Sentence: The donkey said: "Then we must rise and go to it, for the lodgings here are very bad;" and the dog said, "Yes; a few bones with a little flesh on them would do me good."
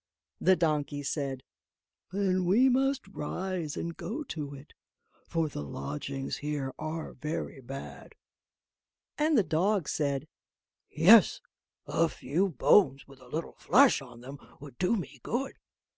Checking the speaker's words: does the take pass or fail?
pass